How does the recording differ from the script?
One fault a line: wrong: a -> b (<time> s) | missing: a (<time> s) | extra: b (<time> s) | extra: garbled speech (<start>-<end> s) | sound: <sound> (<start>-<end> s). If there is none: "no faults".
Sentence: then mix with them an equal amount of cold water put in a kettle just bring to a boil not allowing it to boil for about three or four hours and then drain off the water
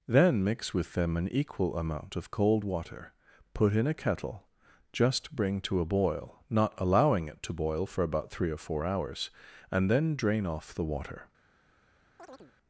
sound: chirp (12.2-12.5 s)